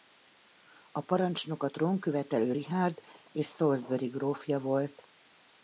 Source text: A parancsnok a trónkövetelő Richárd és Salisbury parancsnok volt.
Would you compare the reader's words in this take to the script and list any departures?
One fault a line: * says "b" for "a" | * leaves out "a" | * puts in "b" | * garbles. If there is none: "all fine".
* says "grófja" for "parancsnok"